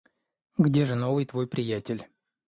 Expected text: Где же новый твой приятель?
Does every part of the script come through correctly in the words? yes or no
yes